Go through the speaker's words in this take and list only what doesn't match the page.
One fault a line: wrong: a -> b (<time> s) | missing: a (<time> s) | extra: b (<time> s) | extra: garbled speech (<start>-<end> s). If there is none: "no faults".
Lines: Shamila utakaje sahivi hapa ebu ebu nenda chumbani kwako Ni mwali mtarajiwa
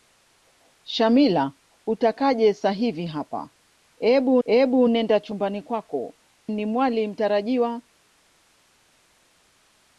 no faults